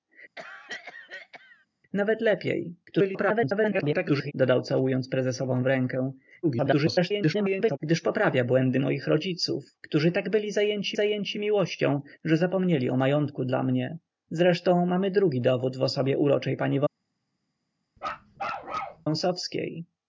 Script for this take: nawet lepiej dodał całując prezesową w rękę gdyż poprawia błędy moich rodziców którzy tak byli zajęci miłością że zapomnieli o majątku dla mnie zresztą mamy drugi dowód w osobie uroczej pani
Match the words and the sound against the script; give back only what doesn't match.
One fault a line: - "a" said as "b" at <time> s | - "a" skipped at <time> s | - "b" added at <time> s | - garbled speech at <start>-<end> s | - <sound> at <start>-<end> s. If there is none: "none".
- cough at 0.4-1.7 s
- garbled speech at 2.9-4.3 s
- garbled speech at 6.4-7.8 s
- "zajęci" added at 10.9 s
- bark at 18.0-19.1 s